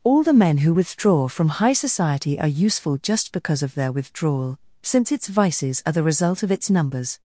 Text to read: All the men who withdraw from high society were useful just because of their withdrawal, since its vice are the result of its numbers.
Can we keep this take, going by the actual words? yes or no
no